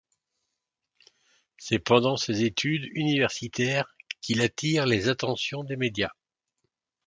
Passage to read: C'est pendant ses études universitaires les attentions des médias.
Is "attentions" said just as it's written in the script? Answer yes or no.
yes